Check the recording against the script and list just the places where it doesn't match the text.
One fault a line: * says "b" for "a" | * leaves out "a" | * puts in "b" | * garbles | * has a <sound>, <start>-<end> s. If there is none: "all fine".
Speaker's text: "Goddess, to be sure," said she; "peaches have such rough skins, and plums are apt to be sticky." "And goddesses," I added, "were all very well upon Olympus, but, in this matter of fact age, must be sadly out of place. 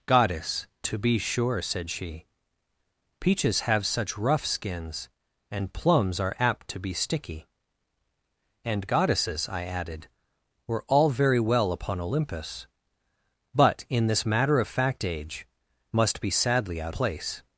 * leaves out "of"